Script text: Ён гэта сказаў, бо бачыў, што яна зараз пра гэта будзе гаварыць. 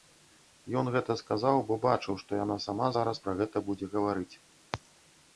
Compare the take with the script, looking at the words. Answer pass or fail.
fail